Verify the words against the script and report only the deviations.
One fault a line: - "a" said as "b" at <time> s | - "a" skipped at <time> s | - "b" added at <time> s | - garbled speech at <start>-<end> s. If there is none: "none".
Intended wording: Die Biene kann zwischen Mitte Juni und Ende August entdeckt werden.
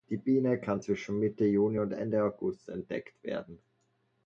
none